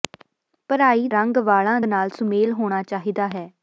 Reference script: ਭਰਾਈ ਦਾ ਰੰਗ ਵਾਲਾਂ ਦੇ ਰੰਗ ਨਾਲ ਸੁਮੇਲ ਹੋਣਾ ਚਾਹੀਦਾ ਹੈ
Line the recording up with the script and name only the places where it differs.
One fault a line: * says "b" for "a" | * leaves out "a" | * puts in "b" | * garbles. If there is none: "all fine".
* leaves out "ਦਾ"
* leaves out "ਦੇ ਰੰਗ"